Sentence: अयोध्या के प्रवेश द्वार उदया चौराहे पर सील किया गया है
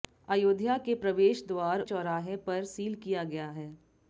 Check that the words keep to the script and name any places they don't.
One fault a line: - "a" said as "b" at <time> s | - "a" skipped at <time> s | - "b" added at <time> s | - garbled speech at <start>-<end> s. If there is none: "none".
- "उदया" skipped at 1.8 s